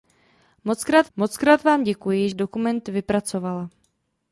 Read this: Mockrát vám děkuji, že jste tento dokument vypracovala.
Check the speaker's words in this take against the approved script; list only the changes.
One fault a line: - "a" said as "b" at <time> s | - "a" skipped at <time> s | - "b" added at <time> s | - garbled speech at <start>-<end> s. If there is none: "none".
- "mockrát" added at 1.1 s
- "že jste tento" skipped at 2.3 s